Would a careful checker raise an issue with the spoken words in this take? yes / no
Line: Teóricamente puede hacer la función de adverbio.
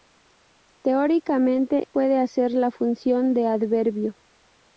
no